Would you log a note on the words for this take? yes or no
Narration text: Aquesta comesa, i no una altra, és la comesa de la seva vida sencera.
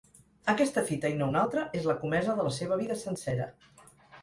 yes